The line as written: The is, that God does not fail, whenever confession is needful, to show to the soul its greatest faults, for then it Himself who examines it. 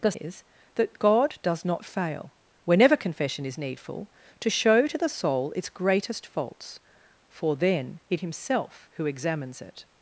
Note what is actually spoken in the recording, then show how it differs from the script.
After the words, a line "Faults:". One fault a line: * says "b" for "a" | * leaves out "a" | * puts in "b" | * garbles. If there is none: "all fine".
The is, that God does not fail, whenever confession is needful, to show to the soul its greatest faults, for then it Himself who examines it.
Faults:
all fine